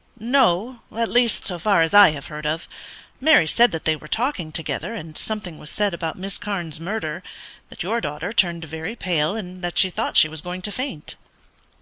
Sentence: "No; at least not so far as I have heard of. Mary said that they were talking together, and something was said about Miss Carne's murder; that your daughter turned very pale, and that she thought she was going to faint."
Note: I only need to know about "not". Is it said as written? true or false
false